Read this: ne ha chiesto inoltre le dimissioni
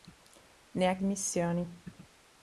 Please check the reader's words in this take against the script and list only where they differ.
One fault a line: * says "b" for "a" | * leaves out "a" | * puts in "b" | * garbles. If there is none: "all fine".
* leaves out "chiesto inoltre le"